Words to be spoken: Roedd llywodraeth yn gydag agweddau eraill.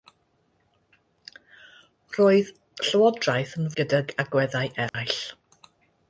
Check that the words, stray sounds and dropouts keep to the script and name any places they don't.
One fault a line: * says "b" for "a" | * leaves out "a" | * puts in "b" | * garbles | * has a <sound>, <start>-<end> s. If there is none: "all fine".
* has a dropout, 4.9-4.9 s